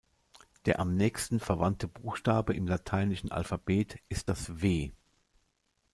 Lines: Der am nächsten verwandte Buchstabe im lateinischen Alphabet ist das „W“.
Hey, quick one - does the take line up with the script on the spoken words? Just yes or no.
yes